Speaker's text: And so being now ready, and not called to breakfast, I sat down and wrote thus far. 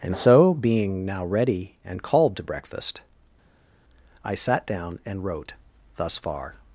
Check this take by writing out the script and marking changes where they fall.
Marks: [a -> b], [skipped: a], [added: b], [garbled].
And so being now ready, and [skipped: not] called to breakfast, I sat down and wrote thus far.